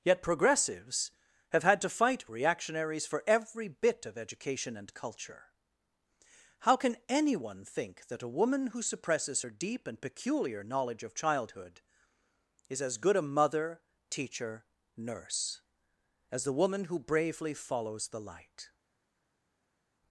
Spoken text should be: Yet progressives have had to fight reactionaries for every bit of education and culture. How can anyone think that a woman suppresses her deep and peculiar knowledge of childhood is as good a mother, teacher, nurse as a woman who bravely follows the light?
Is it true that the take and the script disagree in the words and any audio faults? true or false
true